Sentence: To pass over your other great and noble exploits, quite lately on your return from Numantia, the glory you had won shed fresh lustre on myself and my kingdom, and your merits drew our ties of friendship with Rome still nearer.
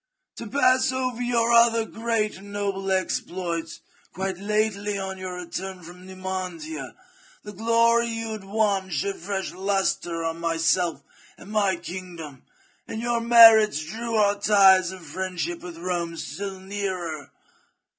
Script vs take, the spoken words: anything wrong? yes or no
no